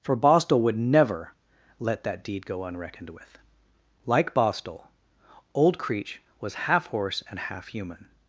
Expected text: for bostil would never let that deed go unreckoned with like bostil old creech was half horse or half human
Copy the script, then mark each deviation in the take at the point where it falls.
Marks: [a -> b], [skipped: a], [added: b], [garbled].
for bostil would never let that deed go unreckoned with like bostil old creech was half horse [or -> and] half human